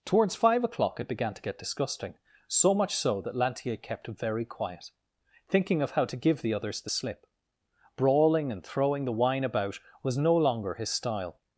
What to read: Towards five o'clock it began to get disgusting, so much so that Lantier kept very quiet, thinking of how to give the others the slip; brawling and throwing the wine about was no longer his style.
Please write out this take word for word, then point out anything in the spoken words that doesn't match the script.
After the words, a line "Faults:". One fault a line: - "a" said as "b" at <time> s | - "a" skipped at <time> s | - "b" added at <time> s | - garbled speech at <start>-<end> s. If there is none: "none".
Towards five o'clock it began to get disgusting, so much so that Lantier kept very quiet, thinking of how to give the others the slip; brawling and throwing the wine about was no longer his style.
Faults:
none